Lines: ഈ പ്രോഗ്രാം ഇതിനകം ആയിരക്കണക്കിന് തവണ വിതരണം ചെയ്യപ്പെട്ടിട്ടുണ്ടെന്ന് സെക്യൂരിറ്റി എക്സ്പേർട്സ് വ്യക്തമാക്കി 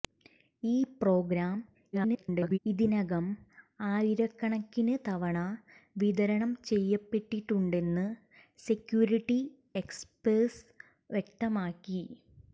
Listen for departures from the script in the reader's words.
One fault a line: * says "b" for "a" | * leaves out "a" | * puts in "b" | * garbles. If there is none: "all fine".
* garbles